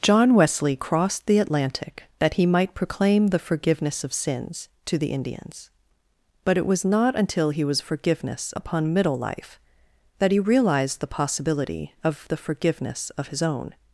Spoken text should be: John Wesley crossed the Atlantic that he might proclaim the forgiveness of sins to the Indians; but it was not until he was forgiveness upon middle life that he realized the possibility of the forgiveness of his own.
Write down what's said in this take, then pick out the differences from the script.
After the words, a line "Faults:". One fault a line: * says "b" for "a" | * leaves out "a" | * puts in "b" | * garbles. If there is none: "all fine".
John Wesley crossed the Atlantic that he might proclaim the forgiveness of sins to the Indians; but it was not until he was forgiveness upon middle life that he realized the possibility of the forgiveness of his own.
Faults:
all fine